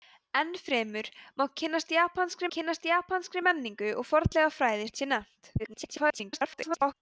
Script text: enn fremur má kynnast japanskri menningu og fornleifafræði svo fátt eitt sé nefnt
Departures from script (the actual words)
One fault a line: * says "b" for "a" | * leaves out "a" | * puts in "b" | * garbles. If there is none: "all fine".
* puts in "kynnast japanskri"
* leaves out "svo fátt"
* garbles